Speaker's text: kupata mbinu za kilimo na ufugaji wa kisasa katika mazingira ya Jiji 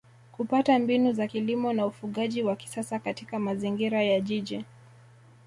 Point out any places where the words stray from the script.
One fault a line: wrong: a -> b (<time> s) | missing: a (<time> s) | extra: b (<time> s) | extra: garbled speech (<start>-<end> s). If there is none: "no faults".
no faults